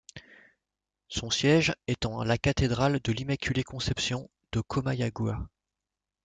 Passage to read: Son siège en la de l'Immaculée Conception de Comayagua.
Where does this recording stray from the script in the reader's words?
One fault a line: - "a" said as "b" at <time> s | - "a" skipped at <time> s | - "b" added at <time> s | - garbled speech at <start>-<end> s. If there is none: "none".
- "est" added at 1.9 s
- "cathédrale" added at 2.4 s